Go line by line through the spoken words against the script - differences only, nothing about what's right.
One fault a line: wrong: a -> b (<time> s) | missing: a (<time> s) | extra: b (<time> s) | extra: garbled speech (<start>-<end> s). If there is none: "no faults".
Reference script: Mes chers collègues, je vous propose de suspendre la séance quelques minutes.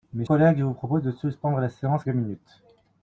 missing: chers (0.2 s)
missing: quelques (2.0 s)